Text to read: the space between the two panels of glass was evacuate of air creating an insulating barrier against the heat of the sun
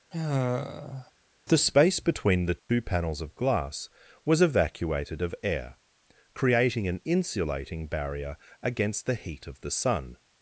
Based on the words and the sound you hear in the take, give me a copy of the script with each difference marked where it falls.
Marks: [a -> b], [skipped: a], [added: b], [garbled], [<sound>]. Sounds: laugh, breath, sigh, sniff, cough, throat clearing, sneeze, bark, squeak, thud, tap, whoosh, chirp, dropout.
[sigh] the space between the two [dropout] panels of glass was [evacuate -> evacuated] of air creating an insulating barrier against the heat of the sun